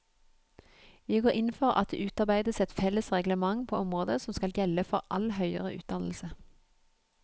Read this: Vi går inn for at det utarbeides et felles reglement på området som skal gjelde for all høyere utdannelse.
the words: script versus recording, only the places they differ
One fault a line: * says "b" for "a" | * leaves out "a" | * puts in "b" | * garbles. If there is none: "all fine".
all fine